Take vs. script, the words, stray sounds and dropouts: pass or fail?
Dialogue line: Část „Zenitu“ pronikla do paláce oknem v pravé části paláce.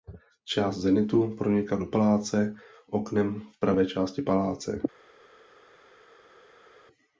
pass